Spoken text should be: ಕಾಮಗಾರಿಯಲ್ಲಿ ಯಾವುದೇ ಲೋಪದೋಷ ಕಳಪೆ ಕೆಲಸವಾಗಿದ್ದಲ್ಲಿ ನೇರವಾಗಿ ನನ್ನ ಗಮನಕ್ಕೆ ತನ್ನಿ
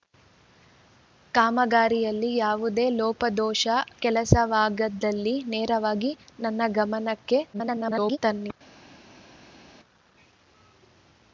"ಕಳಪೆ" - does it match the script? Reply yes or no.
no